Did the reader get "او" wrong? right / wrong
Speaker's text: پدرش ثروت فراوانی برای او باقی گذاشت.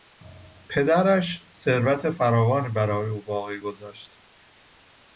right